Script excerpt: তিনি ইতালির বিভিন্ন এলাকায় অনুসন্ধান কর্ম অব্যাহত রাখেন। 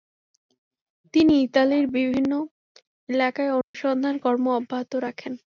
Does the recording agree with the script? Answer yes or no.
yes